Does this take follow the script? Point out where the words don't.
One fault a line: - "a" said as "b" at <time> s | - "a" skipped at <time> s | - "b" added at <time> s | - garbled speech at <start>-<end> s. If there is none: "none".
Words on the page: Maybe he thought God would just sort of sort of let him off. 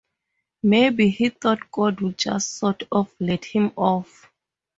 - "sort of" skipped at 3.1 s